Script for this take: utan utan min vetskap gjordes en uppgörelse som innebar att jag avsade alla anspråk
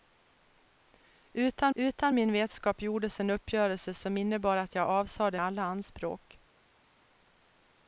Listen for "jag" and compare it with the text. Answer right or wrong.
right